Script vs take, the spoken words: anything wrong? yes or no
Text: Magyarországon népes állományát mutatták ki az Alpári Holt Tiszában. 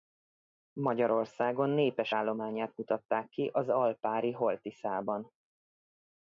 no